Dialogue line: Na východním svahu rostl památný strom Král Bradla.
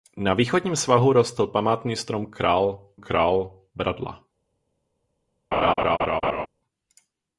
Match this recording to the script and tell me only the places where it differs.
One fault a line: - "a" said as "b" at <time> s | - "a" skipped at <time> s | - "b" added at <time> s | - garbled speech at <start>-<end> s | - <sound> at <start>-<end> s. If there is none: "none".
- "Král" added at 2.9 s
- laugh at 5.5-6.5 s